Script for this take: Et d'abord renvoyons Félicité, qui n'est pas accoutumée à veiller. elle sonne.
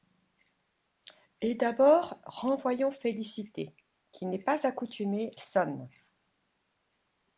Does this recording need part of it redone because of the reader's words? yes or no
yes